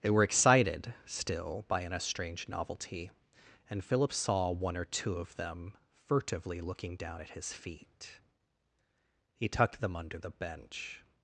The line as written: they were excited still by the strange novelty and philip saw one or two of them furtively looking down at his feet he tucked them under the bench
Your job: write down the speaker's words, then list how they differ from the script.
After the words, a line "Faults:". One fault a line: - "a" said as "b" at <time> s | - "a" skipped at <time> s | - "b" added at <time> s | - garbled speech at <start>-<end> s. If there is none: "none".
they were excited still by an strange novelty and philip saw one or two of them furtively looking down at his feet he tucked them under the bench
Faults:
- "the" said as "an" at 1.8 s